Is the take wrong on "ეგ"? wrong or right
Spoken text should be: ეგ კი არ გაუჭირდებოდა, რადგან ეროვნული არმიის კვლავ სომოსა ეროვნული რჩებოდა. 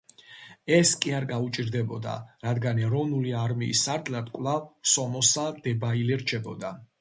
wrong